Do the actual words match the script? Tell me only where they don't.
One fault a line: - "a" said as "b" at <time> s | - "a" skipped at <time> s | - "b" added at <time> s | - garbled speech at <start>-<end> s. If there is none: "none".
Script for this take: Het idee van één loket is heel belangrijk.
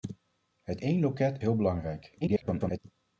- "idee van" skipped at 0.8 s
- "is" skipped at 1.4 s
- garbled speech at 2.2-2.8 s